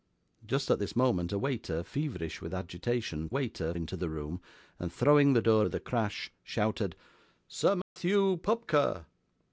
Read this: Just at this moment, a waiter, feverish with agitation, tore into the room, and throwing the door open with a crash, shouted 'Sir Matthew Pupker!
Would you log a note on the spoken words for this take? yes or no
yes